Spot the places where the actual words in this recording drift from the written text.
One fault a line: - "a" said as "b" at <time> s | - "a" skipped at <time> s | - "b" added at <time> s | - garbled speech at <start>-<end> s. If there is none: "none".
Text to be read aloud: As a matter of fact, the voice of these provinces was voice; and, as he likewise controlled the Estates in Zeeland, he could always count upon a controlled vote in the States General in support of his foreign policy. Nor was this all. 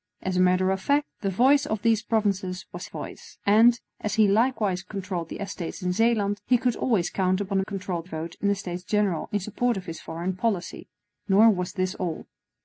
none